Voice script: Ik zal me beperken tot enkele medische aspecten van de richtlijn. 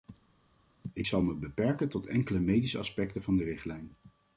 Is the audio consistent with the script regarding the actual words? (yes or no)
yes